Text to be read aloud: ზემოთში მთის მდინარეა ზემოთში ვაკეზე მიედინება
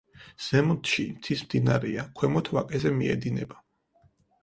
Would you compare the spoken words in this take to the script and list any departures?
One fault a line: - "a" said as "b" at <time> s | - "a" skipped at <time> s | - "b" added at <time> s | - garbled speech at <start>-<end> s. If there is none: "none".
- "ზემოთში" said as "ქვემოთ" at 2.2 s